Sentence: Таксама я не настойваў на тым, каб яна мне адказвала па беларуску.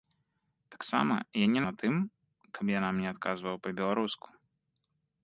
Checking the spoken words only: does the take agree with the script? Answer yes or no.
no